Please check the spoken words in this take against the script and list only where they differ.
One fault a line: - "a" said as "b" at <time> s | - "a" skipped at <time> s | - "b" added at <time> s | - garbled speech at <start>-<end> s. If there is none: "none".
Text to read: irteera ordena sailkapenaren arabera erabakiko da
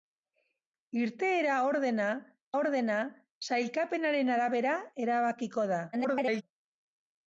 - "ordena" added at 2.6 s
- garbled speech at 5.9-6.4 s